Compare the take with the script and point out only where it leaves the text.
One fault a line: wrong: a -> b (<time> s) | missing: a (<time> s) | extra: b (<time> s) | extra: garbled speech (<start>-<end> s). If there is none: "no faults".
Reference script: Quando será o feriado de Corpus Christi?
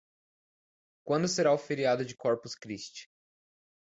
no faults